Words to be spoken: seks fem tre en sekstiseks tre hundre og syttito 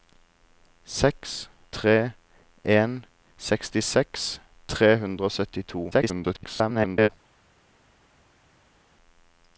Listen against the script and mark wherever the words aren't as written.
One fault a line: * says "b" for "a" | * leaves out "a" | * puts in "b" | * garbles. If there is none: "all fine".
* leaves out "fem"
* garbles